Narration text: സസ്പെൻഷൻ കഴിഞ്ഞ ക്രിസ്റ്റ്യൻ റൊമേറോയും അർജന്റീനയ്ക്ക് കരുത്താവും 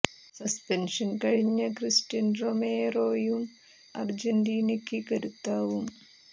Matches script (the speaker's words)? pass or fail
pass